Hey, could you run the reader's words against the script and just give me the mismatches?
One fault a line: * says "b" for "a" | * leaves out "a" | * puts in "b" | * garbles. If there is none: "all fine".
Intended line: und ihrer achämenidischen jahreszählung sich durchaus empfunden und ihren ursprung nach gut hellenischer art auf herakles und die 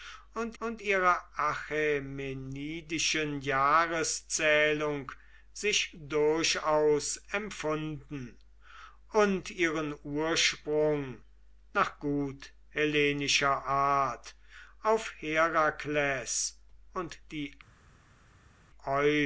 * puts in "und"